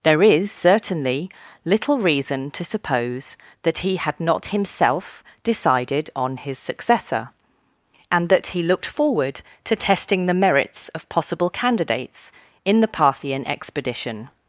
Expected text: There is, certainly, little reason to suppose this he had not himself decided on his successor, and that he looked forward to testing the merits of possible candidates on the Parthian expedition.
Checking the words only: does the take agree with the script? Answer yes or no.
no